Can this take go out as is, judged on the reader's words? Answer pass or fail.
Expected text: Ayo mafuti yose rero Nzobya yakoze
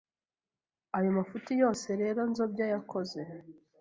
pass